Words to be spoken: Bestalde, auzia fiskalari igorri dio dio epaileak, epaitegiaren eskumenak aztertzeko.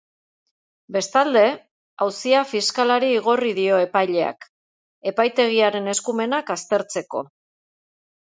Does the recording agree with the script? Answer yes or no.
no